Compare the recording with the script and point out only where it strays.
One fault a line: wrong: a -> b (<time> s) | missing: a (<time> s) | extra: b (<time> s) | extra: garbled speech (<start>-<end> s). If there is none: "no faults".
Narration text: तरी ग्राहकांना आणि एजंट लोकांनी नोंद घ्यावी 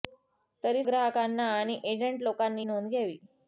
no faults